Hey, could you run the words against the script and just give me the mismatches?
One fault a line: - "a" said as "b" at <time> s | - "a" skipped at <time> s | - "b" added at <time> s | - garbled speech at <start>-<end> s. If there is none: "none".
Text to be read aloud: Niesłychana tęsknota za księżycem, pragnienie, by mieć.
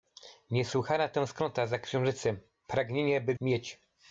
none